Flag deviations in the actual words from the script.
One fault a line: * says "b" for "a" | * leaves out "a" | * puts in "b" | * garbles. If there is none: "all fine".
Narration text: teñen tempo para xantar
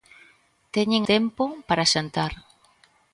all fine